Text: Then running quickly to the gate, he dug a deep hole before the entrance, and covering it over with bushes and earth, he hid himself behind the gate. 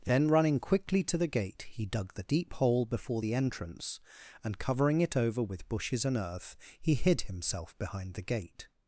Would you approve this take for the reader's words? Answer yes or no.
no